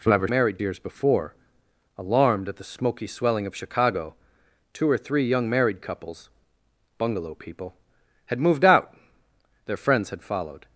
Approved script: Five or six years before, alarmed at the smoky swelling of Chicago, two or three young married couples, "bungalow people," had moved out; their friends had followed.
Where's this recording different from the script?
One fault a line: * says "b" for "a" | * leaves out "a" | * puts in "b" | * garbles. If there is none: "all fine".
* says "married" for "six"